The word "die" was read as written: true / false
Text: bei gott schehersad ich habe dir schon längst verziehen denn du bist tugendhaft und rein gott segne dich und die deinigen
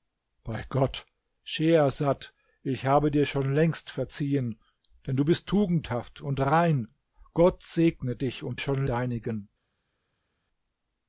false